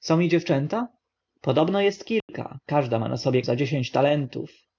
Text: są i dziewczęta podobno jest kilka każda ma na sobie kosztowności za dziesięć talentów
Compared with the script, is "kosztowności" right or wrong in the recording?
wrong